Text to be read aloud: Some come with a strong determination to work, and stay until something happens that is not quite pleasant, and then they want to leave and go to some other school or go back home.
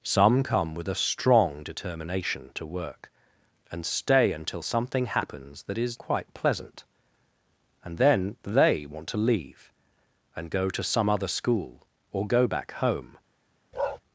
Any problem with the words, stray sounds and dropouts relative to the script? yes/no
yes